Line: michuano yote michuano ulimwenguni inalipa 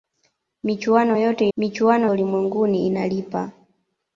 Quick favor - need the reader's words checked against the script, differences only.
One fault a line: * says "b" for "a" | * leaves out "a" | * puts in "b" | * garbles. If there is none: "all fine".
all fine